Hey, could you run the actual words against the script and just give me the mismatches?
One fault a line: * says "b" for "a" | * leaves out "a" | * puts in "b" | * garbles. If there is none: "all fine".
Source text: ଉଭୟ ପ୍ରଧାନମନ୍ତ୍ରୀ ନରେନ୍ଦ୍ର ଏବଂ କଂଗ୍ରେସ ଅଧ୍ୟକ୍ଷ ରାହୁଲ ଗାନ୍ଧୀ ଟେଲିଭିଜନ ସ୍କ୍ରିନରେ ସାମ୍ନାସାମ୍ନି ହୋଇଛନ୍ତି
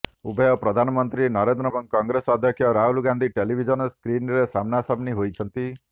all fine